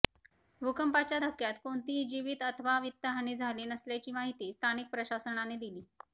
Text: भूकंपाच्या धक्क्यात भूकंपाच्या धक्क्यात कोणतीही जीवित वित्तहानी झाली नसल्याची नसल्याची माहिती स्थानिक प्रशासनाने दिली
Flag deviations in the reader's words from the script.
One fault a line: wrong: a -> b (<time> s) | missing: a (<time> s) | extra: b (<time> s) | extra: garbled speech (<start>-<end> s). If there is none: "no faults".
missing: भूकंपाच्या धक्क्यात (1.5 s)
extra: अथवा (2.4 s)
missing: नसल्याची (4.1 s)